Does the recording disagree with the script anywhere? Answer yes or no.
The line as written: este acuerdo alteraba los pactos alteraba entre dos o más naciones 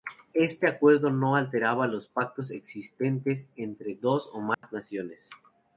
yes